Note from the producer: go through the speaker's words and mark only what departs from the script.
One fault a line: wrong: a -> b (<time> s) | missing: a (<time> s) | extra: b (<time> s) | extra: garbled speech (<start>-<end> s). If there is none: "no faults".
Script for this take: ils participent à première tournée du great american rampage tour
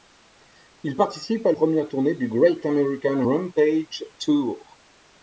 no faults